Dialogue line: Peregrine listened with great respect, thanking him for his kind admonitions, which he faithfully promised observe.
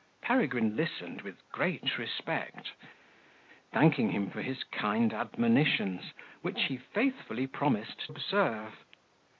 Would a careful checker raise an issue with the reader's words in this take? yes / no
no